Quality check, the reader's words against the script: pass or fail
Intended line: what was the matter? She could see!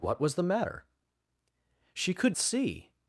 pass